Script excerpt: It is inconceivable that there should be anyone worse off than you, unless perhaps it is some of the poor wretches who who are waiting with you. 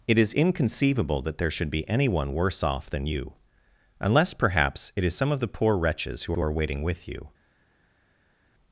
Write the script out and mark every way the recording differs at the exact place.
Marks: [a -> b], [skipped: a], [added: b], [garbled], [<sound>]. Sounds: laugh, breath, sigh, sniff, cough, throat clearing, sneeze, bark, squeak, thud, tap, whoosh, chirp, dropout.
It is inconceivable that there should be anyone worse off than you, unless perhaps it is some of the poor wretches who who are waiting with you.